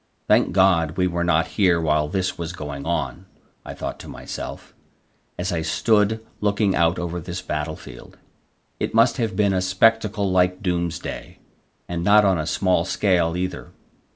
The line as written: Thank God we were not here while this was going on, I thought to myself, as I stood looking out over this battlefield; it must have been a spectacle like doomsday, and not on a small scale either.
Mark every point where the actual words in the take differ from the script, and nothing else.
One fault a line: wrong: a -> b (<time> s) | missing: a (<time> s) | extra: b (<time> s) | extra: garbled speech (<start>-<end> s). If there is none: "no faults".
no faults